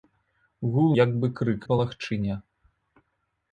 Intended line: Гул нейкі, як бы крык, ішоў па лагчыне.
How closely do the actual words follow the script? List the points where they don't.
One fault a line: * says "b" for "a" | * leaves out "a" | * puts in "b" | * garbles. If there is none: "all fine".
* leaves out "нейкі"
* leaves out "ішоў"